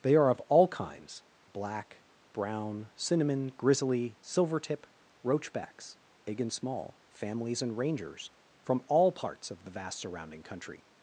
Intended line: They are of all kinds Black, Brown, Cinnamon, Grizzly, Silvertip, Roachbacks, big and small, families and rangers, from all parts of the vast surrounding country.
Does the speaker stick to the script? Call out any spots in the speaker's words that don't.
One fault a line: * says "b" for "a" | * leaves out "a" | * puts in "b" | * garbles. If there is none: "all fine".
all fine